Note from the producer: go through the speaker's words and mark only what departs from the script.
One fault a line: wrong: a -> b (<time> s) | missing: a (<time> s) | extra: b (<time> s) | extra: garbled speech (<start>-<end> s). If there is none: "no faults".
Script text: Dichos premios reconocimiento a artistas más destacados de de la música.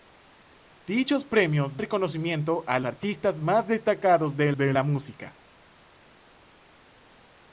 no faults